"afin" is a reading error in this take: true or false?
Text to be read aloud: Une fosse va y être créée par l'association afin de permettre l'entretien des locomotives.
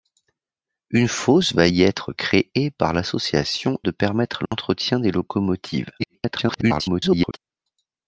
true